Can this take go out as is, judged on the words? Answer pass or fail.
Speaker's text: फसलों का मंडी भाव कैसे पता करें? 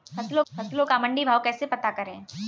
fail